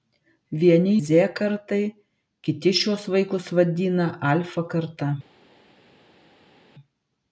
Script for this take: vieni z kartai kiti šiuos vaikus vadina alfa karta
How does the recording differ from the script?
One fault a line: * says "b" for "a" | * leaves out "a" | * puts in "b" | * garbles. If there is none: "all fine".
all fine